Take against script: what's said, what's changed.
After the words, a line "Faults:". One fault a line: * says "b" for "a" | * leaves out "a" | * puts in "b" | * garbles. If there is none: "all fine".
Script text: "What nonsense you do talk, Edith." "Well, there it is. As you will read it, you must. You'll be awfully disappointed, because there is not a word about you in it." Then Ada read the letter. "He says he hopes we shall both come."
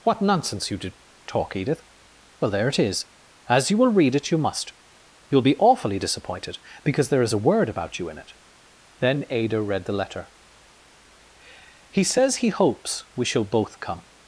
"What nonsense you do talk, Edith." "Well, there it is. As you will read it, you must. You'll be awfully disappointed, because there is a word about you in it." Then Ada read the letter. "He says he hopes we shall both come."
Faults:
* leaves out "not"